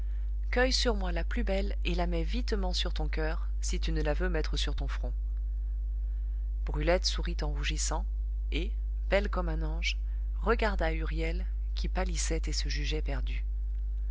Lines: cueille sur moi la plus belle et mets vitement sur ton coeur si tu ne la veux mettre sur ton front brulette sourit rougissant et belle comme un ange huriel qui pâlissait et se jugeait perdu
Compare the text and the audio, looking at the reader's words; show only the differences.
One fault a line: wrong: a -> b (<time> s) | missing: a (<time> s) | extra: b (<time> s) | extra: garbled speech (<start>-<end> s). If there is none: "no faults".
extra: la (1.9 s)
extra: en (7.4 s)
extra: regarda (10.4 s)